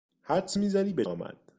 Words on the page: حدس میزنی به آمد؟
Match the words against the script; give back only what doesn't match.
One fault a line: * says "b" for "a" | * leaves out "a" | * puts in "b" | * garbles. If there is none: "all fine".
all fine